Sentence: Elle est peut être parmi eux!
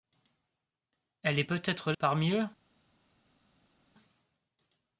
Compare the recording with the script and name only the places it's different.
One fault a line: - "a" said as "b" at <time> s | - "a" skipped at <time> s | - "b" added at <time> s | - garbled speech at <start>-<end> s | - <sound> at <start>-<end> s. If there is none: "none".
none